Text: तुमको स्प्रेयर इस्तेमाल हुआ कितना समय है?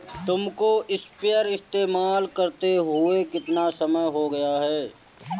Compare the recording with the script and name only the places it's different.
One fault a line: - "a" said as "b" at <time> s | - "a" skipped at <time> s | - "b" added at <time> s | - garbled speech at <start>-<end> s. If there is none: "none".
- "करते" added at 2.3 s
- "हो गया" added at 4.1 s